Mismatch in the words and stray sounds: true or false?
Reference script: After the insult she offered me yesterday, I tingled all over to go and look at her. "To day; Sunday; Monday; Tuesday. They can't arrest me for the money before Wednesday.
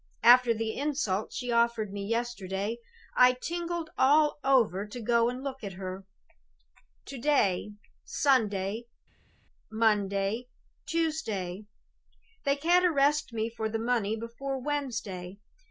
false